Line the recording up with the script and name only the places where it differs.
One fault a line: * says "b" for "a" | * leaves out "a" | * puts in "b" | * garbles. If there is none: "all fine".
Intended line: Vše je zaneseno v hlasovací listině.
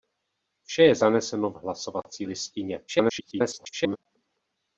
* garbles